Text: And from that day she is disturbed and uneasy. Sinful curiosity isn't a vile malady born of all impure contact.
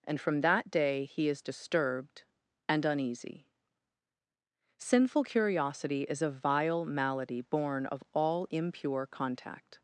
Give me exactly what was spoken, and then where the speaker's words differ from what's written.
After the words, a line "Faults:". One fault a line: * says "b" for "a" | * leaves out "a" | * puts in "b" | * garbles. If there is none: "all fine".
And from that day he is disturbed and uneasy. Sinful curiosity is a vile malady born of all impure contact.
Faults:
* says "he" for "she"
* says "is" for "isn't"